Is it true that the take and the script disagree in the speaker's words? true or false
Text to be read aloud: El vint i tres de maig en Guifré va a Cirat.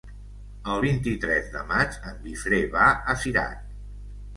false